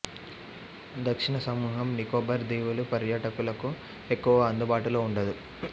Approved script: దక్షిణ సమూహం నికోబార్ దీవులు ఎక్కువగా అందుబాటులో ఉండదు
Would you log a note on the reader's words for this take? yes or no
yes